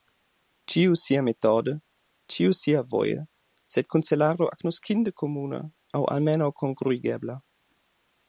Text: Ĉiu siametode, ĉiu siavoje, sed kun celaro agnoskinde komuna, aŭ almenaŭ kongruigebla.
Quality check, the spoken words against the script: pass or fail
pass